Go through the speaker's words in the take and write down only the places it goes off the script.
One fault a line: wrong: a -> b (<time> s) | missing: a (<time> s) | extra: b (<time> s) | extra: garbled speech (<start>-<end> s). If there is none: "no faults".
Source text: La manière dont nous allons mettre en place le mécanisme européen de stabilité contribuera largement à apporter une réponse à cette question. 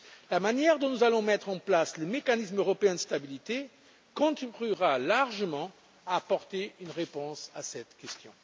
no faults